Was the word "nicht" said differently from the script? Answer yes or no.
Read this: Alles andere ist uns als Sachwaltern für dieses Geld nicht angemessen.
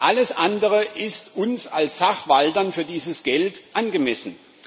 yes